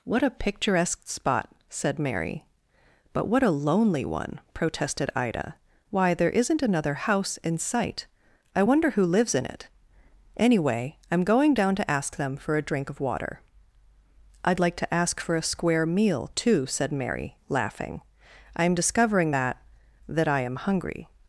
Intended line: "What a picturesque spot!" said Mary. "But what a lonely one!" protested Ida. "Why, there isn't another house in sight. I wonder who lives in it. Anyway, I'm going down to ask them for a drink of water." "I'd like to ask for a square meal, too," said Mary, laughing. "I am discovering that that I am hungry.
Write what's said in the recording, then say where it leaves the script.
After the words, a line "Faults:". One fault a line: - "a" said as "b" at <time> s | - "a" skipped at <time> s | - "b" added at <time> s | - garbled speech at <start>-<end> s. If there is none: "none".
"What a picturesque spot!" said Mary. "But what a lonely one!" protested Ida. "Why, there isn't another house in sight. I wonder who lives in it. Anyway, I'm going down to ask them for a drink of water." "I'd like to ask for a square meal, too," said Mary, laughing. "I am discovering that that I am hungry.
Faults:
none